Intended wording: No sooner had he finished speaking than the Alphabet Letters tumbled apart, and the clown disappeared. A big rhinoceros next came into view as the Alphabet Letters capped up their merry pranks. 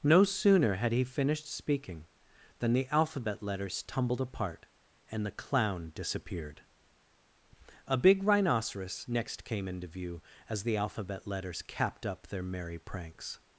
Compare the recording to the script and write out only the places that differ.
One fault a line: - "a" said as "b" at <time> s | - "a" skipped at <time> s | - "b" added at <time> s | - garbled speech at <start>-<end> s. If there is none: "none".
none